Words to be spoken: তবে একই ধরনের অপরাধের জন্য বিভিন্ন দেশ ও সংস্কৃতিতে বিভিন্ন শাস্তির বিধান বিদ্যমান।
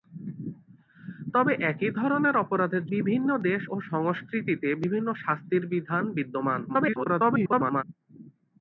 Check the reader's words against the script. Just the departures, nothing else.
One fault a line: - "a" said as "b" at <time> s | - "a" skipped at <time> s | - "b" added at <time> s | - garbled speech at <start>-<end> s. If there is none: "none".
- "জন্য" skipped at 2.8 s
- garbled speech at 6.7-7.8 s